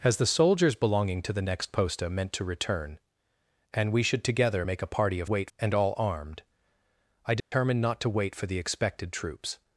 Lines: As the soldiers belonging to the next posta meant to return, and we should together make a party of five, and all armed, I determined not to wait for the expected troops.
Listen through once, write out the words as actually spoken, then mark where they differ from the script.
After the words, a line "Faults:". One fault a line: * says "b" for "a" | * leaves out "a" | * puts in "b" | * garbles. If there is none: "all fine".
As the soldiers belonging to the next posta meant to return, and we should together make a party of wait, and all armed, I determined not to wait for the expected troops.
Faults:
* says "wait" for "five"